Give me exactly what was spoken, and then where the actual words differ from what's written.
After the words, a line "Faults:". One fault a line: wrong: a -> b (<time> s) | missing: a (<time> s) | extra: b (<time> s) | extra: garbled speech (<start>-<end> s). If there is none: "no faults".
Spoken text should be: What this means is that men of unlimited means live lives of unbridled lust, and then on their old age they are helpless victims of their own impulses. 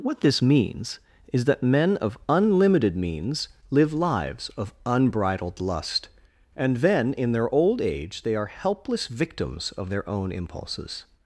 What this means is that men of unlimited means live lives of unbridled lust, and then in their old age they are helpless victims of their own impulses.
Faults:
wrong: on -> in (7.1 s)